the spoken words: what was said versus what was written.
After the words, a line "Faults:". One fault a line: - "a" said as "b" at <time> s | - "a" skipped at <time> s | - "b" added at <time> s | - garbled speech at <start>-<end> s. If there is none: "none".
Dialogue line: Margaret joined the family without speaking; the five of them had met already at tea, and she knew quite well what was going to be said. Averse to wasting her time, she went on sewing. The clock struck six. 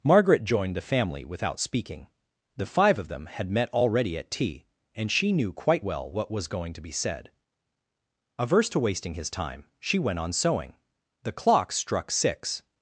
Margaret joined the family without speaking; the five of them had met already at tea, and she knew quite well what was going to be said. Averse to wasting his time, she went on sewing. The clock struck six.
Faults:
- "her" said as "his" at 9.2 s